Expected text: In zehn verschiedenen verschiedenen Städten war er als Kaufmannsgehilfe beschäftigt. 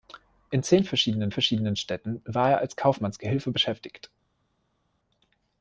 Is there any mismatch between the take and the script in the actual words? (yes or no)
no